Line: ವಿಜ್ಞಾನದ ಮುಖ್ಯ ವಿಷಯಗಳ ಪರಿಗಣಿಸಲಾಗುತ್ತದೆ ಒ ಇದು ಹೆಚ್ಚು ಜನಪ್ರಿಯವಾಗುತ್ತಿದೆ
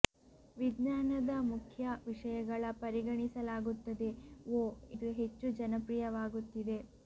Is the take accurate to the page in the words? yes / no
yes